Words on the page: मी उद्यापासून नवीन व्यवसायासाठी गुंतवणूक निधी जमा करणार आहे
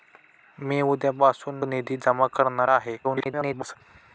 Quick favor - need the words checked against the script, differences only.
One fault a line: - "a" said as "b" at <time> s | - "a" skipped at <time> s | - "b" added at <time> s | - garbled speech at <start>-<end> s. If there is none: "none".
- "नवीन व्यवसायासाठी गुंतवणूक" skipped at 1.6 s
- garbled speech at 3.0-3.8 s